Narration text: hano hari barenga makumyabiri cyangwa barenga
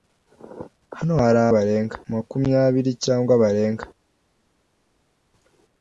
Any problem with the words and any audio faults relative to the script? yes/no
no